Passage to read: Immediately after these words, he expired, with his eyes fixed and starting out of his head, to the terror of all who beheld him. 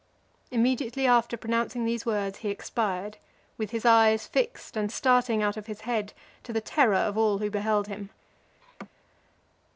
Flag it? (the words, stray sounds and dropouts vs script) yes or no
yes